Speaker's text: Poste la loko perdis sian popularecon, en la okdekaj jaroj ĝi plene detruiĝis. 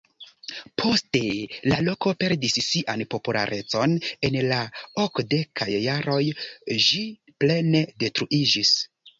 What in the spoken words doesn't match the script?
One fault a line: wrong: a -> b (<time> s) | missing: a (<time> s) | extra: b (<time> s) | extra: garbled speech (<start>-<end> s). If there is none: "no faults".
no faults